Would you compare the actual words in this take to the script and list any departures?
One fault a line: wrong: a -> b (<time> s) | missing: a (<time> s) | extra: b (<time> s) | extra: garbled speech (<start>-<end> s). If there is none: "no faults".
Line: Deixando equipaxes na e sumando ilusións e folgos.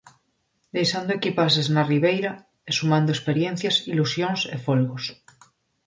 extra: ribeira (1.9 s)
extra: experiencias (3.2 s)